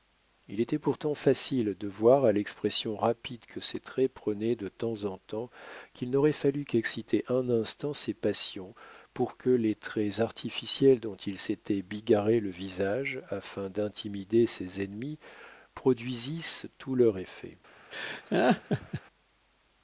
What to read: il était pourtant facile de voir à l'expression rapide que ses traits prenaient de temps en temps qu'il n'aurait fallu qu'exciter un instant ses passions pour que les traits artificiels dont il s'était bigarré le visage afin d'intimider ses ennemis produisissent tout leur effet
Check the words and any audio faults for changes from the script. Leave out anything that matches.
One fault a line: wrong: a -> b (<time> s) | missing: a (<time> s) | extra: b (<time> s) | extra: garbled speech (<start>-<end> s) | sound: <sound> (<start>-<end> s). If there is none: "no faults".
sound: laugh (17.9-19.0 s)